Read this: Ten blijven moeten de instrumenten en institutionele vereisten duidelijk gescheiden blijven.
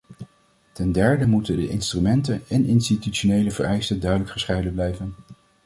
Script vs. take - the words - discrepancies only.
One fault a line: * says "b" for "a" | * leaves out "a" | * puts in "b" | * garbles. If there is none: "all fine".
* says "derde" for "blijven"